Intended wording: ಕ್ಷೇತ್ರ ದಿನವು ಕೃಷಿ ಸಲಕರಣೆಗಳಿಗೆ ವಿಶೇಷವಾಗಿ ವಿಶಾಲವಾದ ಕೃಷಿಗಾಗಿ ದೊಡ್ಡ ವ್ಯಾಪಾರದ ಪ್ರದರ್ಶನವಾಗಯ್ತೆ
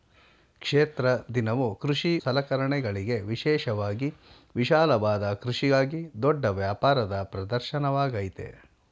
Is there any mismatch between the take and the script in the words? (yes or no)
no